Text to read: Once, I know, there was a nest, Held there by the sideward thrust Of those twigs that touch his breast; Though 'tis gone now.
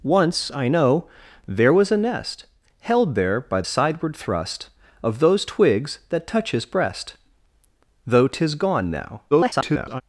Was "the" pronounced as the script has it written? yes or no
no